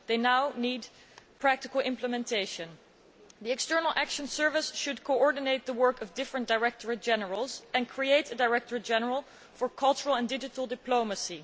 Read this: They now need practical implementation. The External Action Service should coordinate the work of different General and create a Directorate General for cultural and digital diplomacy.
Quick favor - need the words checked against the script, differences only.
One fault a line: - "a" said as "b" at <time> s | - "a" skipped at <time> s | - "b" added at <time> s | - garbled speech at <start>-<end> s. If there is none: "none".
- "Directorates" added at 6.5 s